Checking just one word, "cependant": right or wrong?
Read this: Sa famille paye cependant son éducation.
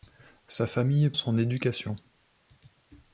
wrong